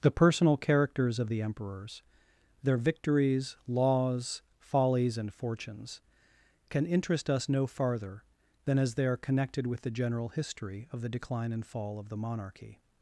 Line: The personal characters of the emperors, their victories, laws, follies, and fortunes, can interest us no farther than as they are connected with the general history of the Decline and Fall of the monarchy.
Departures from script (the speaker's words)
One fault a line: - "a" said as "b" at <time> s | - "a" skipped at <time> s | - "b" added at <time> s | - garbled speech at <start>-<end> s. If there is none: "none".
none